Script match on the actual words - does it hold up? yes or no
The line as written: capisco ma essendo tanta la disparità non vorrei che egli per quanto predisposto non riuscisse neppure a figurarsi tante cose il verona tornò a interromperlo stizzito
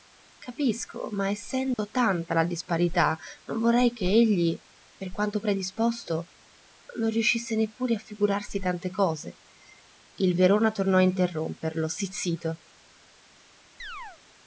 yes